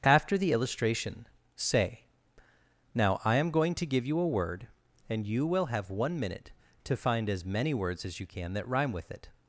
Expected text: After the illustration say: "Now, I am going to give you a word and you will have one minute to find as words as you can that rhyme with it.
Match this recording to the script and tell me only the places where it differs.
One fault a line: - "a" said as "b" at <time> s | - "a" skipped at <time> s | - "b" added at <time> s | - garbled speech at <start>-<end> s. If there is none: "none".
- "many" added at 7.4 s